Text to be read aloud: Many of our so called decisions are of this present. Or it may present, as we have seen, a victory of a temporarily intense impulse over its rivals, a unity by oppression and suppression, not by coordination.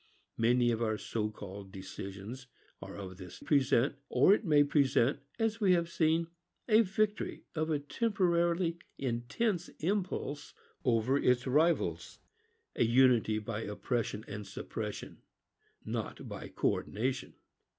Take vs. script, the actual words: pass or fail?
pass